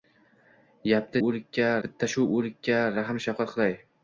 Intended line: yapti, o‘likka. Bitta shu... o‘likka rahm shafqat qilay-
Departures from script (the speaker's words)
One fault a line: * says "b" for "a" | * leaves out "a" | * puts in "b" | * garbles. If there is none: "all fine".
all fine